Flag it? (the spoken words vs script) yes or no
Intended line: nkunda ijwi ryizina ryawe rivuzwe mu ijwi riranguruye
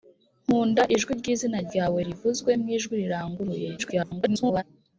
yes